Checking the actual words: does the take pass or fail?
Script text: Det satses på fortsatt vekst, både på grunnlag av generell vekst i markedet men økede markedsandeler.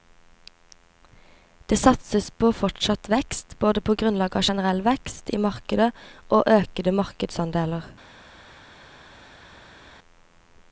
fail